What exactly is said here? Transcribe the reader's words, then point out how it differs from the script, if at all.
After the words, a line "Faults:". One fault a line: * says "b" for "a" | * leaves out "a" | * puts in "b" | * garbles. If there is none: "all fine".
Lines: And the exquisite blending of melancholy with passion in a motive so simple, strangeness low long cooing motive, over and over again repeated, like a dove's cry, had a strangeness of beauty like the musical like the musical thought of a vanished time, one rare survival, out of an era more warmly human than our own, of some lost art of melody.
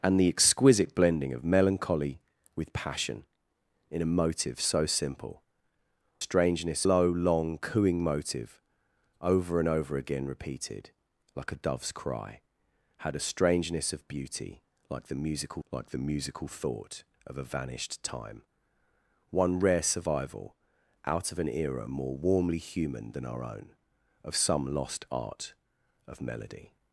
And the exquisite blending of melancholy with passion in a motive so simple, strangeness low long cooing motive, over and over again repeated, like a dove's cry, had a strangeness of beauty like the musical like the musical thought of a vanished time, one rare survival, out of an era more warmly human than our own, of some lost art of melody.
Faults:
all fine